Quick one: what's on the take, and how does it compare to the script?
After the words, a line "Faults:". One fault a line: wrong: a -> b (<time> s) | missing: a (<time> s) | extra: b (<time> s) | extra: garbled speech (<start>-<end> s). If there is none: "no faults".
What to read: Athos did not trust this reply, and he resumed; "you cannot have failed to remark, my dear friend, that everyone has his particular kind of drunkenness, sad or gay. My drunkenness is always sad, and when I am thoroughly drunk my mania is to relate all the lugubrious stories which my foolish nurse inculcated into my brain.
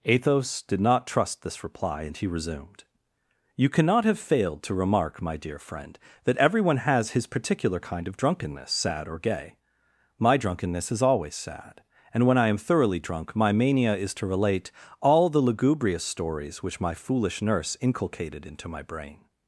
Athos did not trust this reply, and he resumed; "you cannot have failed to remark, my dear friend, that everyone has his particular kind of drunkenness, sad or gay. My drunkenness is always sad, and when I am thoroughly drunk my mania is to relate all the lugubrious stories which my foolish nurse inculcated into my brain.
Faults:
no faults